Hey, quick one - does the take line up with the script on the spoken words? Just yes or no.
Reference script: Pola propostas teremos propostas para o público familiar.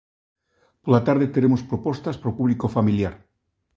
no